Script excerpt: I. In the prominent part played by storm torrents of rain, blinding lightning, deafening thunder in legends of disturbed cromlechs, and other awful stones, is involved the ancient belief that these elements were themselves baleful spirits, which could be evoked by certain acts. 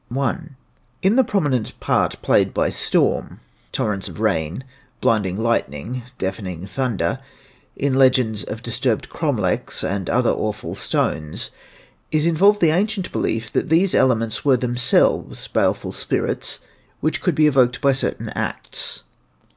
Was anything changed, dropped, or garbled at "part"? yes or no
no